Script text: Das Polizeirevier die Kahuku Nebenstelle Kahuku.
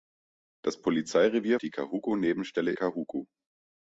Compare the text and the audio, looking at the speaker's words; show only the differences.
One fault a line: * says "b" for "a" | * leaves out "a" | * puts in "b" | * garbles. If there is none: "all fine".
all fine